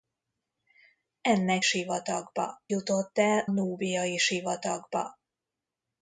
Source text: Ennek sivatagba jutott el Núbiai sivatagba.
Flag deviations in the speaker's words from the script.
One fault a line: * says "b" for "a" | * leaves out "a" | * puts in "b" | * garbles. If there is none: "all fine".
all fine